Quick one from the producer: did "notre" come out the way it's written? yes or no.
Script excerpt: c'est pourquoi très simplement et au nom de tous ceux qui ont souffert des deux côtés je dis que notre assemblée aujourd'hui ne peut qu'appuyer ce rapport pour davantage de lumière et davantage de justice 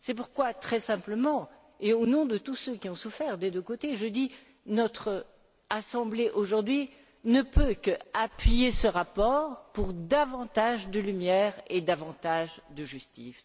yes